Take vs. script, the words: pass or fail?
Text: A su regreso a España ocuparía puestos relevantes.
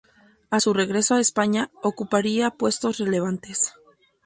pass